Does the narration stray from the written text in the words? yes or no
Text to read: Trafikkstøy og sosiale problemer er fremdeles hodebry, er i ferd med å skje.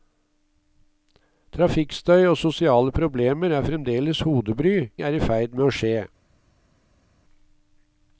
no